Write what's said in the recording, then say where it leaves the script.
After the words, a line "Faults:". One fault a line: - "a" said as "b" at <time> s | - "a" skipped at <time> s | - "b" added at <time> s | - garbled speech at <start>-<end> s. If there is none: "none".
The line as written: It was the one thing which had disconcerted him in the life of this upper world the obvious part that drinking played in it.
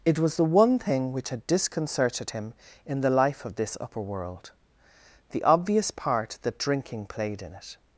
It was the one thing which had disconcerted him in the life of this upper world the obvious part that drinking played in it.
Faults:
none